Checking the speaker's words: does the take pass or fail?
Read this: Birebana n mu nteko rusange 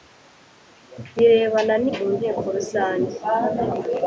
pass